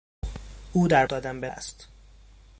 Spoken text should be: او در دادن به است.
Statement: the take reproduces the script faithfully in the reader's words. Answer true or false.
true